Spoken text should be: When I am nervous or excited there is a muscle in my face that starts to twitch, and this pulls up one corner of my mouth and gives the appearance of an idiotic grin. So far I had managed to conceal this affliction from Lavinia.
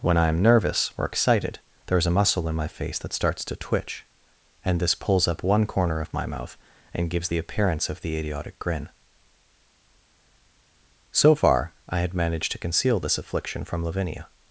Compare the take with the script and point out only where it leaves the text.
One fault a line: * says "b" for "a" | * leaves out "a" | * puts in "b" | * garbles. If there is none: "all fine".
* says "the" for "an"